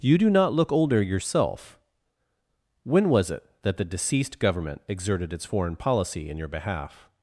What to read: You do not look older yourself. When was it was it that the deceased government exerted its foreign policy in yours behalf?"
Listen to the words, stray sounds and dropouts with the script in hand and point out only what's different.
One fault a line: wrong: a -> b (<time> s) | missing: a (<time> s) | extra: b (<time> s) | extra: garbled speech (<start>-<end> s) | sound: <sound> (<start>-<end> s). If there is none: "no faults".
missing: was it (3.5 s)
wrong: yours -> your (6.4 s)